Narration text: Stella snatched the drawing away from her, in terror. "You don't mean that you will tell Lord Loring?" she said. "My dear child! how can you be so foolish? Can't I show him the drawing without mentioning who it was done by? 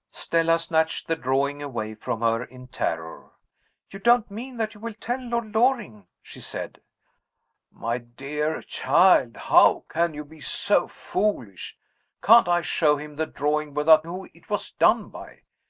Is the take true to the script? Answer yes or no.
no